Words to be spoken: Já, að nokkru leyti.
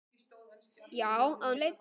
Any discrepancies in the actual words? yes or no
yes